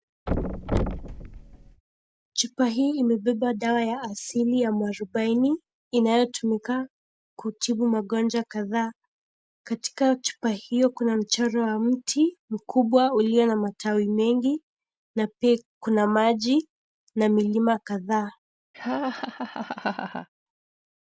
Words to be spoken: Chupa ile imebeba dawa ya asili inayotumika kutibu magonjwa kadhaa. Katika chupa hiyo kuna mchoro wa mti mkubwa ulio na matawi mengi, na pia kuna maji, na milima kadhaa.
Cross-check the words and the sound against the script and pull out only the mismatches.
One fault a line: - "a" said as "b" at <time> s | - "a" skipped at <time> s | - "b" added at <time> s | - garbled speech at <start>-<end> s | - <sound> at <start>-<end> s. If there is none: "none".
- thud at 0.3-1.8 s
- "ile" said as "hii" at 2.7 s
- "ya mwarubaini" added at 4.6 s
- laugh at 18.7-20.3 s